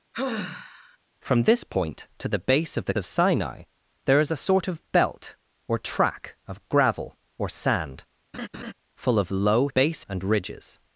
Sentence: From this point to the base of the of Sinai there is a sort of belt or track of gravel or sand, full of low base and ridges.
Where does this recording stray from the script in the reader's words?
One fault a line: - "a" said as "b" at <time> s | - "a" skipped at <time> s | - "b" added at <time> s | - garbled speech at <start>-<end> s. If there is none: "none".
none